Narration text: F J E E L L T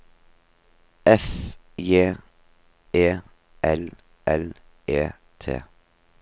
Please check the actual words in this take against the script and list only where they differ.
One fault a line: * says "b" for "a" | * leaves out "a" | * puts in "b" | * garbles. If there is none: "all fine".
* says "L" for "E"
* says "E" for "L"